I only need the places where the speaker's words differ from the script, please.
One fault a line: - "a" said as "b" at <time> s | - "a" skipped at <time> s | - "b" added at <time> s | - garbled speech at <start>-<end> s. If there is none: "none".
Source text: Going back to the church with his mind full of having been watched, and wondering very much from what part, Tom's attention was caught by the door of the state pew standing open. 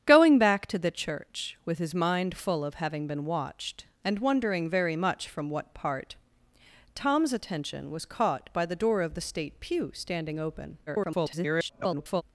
- garbled speech at 10.9-12.2 s